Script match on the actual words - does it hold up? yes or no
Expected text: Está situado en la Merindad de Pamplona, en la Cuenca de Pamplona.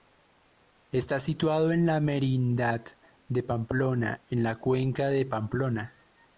yes